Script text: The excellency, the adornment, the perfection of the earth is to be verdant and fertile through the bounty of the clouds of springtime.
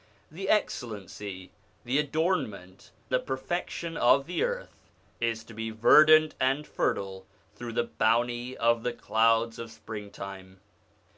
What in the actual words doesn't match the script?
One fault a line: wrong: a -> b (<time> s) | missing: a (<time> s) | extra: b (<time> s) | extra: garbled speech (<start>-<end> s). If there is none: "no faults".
no faults